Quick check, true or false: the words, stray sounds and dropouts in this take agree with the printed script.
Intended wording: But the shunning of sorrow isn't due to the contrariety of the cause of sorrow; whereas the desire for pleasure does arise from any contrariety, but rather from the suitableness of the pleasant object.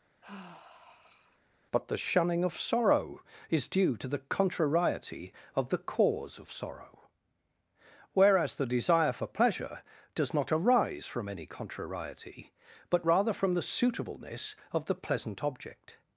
false